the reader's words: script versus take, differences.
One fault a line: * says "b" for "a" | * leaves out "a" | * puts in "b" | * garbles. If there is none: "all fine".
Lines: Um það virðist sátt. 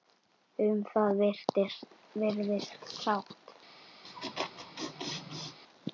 all fine